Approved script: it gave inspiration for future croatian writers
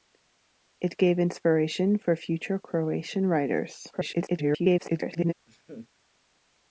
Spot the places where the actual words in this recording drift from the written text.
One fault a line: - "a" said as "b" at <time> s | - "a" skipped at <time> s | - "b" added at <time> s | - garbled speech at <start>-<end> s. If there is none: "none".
- garbled speech at 3.9-5.3 s